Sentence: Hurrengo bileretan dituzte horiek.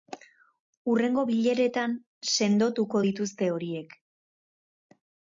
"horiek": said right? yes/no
yes